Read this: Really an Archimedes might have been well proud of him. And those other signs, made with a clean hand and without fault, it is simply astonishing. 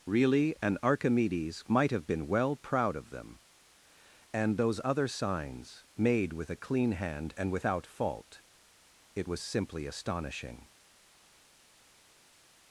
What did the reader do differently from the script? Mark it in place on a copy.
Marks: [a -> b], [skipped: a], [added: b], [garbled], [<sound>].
Really an Archimedes might have been well proud of [him. -> them] And those other signs, made with a clean hand and without fault, it [is -> was] simply astonishing.